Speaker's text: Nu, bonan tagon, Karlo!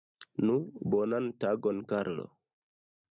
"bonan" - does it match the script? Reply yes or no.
yes